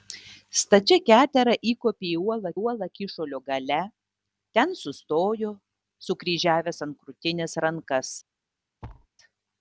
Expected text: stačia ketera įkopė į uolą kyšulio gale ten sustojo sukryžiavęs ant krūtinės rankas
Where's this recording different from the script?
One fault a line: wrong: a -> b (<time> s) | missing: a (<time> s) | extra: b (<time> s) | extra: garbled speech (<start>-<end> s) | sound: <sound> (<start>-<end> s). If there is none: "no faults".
extra: uolą (2.6 s)
sound: thud (8.8-9.1 s)